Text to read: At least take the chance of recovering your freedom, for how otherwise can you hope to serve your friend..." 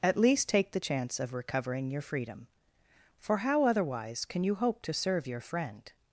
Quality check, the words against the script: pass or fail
pass